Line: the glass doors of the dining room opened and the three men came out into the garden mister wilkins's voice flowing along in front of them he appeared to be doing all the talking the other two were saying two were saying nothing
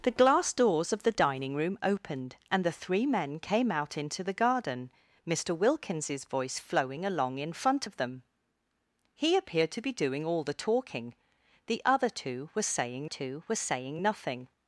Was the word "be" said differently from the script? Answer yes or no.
no